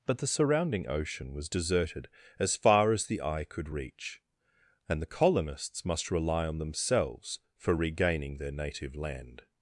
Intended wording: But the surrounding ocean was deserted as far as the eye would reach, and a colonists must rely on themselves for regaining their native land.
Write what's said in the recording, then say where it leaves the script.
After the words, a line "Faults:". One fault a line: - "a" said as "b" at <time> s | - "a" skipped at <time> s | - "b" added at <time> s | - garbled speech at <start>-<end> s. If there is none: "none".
But the surrounding ocean was deserted as far as the eye could reach, and the colonists must rely on themselves for regaining their native land.
Faults:
- "would" said as "could" at 3.4 s
- "a" said as "the" at 5.0 s